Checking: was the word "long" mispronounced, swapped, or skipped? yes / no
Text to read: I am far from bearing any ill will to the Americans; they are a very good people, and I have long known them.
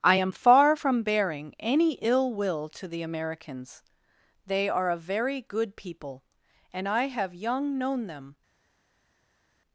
yes